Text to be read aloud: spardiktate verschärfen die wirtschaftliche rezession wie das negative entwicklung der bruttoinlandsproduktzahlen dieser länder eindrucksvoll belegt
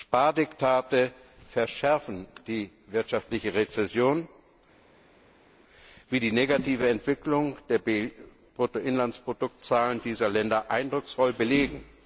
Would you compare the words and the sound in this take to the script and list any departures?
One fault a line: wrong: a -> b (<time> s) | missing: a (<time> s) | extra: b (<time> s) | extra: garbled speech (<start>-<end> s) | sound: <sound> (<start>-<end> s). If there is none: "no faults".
wrong: das -> die (6.2 s)